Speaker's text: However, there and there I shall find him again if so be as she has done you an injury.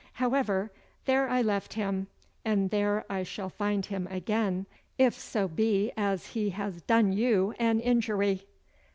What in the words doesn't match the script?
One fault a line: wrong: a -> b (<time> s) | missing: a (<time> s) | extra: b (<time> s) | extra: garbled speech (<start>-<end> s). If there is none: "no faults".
extra: I left him (1.3 s)
wrong: she -> he (6.3 s)